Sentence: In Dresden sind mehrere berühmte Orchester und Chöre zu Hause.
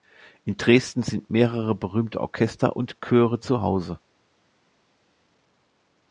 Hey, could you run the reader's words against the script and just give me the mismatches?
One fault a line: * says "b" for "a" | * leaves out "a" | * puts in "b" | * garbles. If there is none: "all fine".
all fine